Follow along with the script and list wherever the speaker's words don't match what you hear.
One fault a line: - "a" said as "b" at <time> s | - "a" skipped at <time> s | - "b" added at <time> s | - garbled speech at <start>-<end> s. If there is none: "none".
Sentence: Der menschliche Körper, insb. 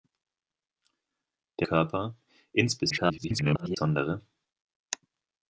- "menschliche" skipped at 1.7 s
- garbled speech at 2.9-3.8 s